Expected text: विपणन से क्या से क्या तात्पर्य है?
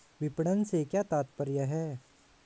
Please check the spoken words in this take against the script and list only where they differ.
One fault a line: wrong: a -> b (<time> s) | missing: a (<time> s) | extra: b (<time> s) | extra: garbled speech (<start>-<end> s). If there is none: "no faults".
missing: से क्या (1.0 s)